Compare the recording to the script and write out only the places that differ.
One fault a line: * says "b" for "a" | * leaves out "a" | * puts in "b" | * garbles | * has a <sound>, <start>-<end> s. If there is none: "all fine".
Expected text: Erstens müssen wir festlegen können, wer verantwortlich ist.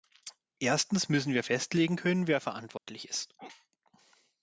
* has a dropout, 2.8-2.9 s